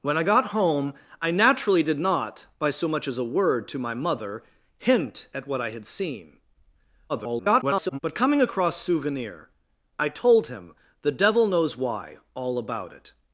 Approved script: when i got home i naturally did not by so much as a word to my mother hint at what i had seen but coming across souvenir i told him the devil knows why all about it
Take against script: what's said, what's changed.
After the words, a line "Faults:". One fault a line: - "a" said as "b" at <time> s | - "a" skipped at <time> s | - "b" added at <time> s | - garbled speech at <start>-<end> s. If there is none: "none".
when i got home i naturally did not by so much as a word to my mother hint at what i had seen [garbled] but coming across souvenir i told him the devil knows why all about it
Faults:
- garbled speech at 7.1-8.0 s